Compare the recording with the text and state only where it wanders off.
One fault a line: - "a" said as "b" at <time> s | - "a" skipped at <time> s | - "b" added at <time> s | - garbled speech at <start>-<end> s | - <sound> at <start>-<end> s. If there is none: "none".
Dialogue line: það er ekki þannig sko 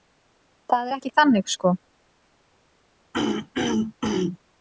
- throat clearing at 3.1-4.4 s